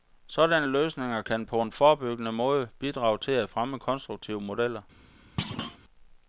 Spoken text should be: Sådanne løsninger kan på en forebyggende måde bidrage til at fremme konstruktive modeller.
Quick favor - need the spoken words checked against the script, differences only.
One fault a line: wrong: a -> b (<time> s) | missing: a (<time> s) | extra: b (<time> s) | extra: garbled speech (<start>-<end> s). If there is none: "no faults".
no faults